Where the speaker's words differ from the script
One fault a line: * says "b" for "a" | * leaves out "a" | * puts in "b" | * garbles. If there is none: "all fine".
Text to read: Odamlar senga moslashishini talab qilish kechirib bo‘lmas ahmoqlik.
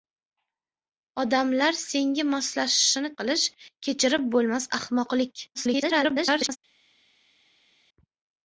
* leaves out "talab"
* garbles